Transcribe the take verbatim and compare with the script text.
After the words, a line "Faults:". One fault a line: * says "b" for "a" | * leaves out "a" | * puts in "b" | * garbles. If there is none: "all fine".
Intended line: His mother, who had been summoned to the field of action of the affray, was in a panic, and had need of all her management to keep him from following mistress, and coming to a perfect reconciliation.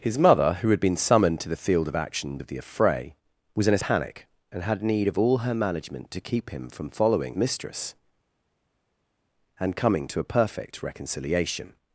His mother, who had been summoned to the field of action of the affray, was in a panic, and had need of all her management to keep him from following mistress, and coming to a perfect reconciliation.
Faults:
all fine